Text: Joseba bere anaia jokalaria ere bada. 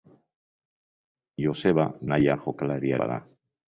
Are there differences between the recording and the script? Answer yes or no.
yes